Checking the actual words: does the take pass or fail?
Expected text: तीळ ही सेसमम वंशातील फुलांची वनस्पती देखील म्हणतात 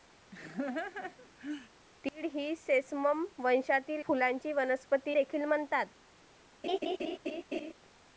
pass